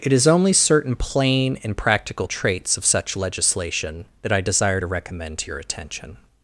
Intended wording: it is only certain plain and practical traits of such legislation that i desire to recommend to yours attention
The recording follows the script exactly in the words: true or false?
false